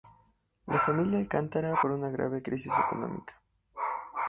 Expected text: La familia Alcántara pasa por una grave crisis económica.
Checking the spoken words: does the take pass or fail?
fail